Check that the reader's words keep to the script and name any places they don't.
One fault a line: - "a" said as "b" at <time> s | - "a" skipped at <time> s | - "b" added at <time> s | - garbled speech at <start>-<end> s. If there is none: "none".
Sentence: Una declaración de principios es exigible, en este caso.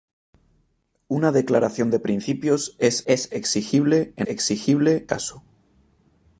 - "es" added at 3.1 s
- "este" said as "exigible" at 4.3 s